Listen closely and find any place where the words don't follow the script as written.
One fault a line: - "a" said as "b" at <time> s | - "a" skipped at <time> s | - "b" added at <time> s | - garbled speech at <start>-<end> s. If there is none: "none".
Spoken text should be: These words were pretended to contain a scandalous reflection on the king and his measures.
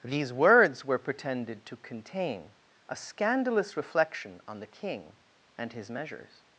none